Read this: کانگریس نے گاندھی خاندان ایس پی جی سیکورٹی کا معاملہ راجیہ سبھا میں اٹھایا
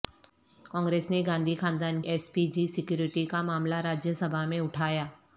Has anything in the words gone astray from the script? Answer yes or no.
no